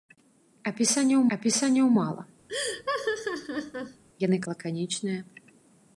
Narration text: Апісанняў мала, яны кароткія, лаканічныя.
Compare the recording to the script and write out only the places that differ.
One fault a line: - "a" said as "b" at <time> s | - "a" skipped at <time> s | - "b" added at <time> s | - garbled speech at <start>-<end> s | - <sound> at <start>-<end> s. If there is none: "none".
- "апісанняў" added at 1.4 s
- laugh at 2.5-4.0 s
- "кароткія" skipped at 4.4 s